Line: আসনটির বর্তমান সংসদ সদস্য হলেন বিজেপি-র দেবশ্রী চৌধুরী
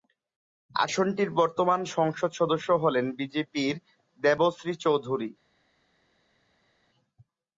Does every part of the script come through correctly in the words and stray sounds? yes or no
yes